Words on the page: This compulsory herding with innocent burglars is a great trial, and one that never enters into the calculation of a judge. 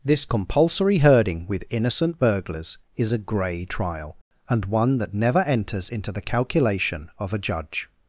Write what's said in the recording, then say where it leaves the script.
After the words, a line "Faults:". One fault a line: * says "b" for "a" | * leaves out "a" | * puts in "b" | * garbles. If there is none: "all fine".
This compulsory herding with innocent burglars is a grey trial, and one that never enters into the calculation of a judge.
Faults:
* says "grey" for "great"